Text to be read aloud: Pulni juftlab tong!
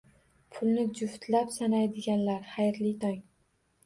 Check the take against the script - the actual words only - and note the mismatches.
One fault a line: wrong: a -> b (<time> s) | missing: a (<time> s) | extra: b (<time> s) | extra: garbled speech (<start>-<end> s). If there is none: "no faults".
extra: sanaydiganlar xayrli (1.6 s)